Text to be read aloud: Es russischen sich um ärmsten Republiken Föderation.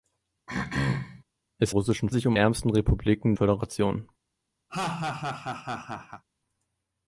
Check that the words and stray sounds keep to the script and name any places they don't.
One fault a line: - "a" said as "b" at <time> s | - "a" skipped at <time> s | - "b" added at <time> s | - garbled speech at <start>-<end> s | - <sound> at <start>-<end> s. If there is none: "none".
- throat clearing at 0.5-1.2 s
- laugh at 4.7-6.2 s